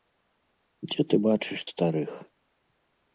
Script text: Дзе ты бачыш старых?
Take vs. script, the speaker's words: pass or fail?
pass